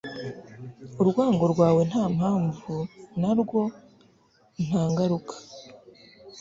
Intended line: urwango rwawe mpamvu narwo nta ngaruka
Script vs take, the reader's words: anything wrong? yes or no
yes